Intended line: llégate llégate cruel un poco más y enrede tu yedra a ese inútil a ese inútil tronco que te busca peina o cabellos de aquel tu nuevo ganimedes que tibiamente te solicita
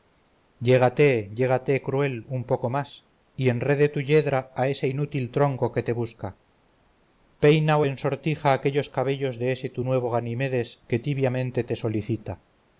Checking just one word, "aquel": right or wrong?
wrong